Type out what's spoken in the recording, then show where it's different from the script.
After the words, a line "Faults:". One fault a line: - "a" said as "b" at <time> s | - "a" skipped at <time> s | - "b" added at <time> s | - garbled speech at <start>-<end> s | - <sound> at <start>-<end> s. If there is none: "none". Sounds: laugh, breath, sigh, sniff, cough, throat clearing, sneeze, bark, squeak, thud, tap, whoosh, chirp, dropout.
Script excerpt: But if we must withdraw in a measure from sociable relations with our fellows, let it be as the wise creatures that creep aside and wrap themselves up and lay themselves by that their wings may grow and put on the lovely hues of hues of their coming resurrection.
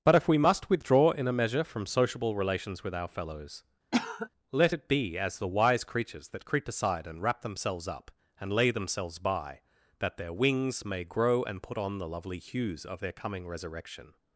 But if we must withdraw in a measure from sociable relations with our fellows, let it be as the wise creatures that creep aside and wrap themselves up and lay themselves by that their wings may grow and put on the lovely hues of their coming resurrection.
Faults:
- cough at 3.9-4.3 s
- "hues of" skipped at 13.0 s